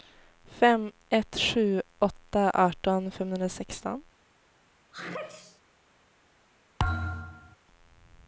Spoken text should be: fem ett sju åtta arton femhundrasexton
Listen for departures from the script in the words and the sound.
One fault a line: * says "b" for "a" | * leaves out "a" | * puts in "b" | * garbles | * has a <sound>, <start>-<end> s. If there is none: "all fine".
* has a sneeze, 4.9-5.6 s
* has a thud, 6.8-7.6 s